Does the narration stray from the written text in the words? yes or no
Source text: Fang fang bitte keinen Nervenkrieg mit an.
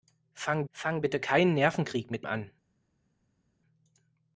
no